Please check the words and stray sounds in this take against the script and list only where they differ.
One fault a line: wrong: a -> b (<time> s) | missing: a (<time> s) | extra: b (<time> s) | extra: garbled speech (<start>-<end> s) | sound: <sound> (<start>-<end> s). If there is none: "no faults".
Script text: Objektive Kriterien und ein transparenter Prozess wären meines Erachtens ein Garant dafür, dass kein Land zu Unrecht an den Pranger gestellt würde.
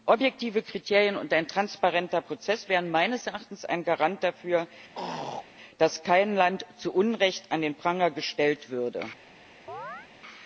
sound: throat clearing (4.9-5.5 s)
sound: chirp (9.7-10.1 s)